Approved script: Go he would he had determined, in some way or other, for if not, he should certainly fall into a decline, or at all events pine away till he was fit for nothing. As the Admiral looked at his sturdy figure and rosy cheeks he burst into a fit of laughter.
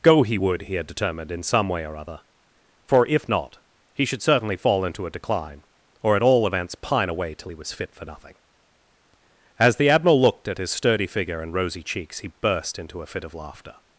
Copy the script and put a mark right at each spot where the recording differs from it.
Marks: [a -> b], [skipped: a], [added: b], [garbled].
Go he would he had determined, in some way or other, for if not, he should certainly fall into a decline, or at all events pine away till he was fit for nothing. As the Admiral looked at his sturdy figure and rosy cheeks he burst into a fit of laughter.